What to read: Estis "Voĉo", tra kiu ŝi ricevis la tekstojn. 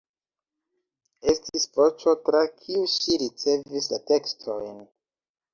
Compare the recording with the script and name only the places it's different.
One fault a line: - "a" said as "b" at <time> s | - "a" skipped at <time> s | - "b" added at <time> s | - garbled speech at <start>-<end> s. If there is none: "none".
none